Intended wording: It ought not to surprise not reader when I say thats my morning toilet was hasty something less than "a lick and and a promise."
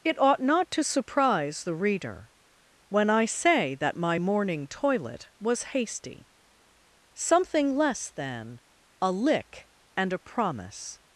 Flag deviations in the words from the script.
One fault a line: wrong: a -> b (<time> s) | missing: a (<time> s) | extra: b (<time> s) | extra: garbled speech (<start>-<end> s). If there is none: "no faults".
wrong: not -> the (1.6 s)
wrong: thats -> that (3.7 s)
missing: and (10.1 s)